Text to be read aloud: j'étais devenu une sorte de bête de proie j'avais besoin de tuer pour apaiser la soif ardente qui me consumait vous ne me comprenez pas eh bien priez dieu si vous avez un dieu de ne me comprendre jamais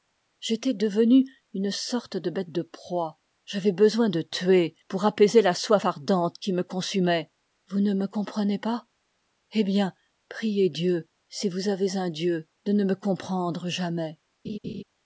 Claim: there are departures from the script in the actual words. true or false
false